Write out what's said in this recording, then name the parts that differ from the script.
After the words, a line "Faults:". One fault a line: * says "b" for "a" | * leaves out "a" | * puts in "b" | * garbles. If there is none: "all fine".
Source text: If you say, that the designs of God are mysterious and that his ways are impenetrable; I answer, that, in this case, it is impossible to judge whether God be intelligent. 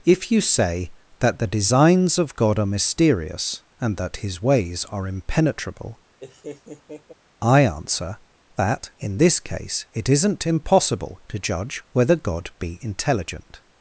If you say, that the designs of God are mysterious and that his ways are impenetrable; I answer, that, in this case, it isn't impossible to judge whether God be intelligent.
Faults:
* says "isn't" for "is"